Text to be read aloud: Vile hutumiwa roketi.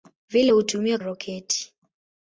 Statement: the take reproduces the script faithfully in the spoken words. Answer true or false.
true